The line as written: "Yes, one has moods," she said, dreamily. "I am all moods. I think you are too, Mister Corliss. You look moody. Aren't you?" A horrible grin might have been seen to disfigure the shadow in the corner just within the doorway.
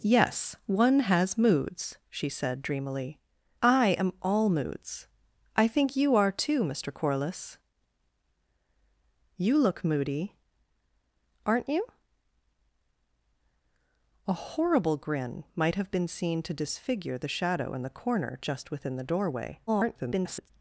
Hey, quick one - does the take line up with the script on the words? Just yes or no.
no